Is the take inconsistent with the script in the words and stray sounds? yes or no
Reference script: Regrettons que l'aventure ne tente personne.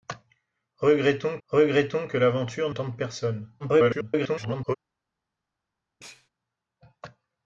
yes